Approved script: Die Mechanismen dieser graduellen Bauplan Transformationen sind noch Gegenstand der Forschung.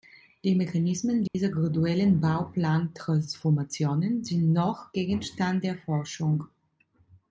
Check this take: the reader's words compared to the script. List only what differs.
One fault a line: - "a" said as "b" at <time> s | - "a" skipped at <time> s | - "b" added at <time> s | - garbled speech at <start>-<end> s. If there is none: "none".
none